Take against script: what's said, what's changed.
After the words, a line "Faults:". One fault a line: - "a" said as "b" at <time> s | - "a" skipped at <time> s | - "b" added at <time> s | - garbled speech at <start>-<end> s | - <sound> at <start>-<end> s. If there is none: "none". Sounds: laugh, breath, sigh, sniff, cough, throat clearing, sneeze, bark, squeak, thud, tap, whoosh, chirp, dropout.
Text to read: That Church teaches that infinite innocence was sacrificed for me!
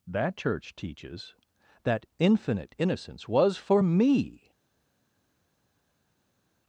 That Church teaches that infinite innocence was for me!
Faults:
- "sacrificed" skipped at 3.6 s